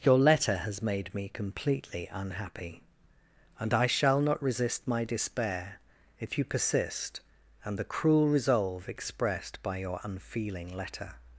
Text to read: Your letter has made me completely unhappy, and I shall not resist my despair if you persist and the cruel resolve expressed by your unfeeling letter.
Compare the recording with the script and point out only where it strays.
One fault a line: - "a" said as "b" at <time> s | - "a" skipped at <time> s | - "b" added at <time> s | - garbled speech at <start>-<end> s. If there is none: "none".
none